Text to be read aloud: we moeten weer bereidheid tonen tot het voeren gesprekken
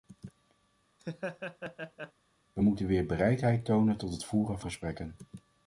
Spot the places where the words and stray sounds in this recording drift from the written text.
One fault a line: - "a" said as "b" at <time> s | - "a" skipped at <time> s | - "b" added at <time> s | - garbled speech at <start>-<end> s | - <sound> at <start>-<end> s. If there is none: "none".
- laugh at 1.0-2.1 s